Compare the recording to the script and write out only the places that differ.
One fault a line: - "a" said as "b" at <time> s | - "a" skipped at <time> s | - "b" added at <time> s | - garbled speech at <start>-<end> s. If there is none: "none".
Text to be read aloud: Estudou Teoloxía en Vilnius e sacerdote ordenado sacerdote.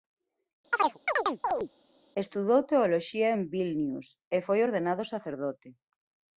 - "sacerdote" said as "foi" at 4.5 s